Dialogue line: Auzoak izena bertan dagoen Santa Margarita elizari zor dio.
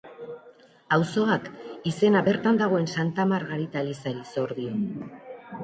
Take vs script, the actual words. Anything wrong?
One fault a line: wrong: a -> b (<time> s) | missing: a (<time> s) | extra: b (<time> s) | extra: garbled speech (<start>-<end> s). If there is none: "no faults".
no faults